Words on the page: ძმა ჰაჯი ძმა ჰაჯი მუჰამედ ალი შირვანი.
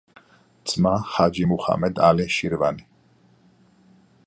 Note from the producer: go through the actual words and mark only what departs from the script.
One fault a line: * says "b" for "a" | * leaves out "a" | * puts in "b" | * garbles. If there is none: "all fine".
* leaves out "ძმა ჰაჯი"